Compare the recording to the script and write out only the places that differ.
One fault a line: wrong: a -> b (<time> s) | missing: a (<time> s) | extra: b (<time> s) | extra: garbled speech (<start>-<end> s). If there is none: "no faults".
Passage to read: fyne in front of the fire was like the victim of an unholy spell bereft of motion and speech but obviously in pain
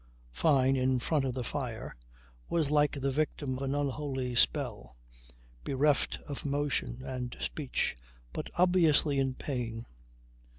missing: of (3.6 s)